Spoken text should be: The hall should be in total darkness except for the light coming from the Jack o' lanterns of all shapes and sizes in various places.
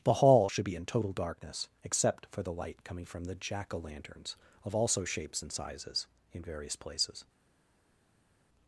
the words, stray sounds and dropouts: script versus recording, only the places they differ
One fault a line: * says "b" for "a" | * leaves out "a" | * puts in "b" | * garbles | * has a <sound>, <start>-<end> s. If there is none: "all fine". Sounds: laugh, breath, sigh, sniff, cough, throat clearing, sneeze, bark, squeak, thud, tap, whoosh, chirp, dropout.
* says "also" for "all"